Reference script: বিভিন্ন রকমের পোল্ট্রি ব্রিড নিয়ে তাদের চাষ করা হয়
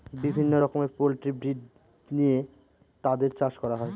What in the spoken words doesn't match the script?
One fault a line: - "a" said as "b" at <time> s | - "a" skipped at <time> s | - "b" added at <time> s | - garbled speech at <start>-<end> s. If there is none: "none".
none